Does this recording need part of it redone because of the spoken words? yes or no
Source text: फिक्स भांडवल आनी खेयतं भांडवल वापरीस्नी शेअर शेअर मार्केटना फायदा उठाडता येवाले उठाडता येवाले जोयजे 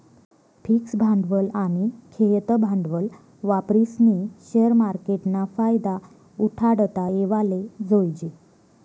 yes